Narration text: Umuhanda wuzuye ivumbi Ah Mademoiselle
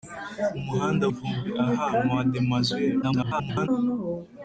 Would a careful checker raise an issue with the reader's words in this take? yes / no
yes